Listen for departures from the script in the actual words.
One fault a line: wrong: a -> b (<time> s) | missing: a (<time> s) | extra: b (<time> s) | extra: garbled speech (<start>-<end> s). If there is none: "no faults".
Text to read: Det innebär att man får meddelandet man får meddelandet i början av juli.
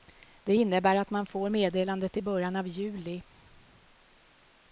missing: man får meddelandet (2.2 s)